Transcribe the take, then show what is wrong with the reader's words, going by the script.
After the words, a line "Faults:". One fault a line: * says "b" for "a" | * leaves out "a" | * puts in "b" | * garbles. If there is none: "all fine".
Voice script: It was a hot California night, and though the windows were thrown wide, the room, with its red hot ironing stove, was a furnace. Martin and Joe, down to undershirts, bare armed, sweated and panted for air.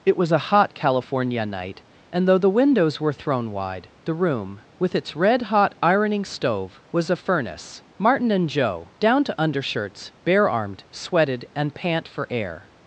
It was a hot California night, and though the windows were thrown wide, the room, with its red hot ironing stove, was a furnace. Martin and Joe, down to undershirts, bare armed, sweated and pant for air.
Faults:
* says "pant" for "panted"